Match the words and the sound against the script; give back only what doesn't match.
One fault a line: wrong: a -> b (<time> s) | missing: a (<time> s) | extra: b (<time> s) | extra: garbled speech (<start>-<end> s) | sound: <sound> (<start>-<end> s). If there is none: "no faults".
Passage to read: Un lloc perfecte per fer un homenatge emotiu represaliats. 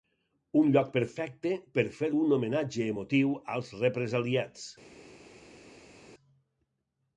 extra: als (3.6 s)